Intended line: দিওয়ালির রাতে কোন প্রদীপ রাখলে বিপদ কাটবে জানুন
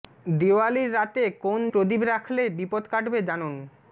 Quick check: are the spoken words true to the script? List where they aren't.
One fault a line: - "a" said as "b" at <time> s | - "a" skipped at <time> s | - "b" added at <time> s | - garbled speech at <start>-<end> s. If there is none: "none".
none